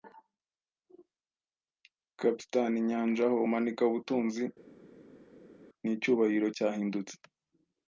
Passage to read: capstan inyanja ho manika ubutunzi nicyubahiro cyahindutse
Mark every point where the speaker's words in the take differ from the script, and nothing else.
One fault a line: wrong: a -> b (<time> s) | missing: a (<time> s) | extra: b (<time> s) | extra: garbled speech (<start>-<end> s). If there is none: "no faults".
no faults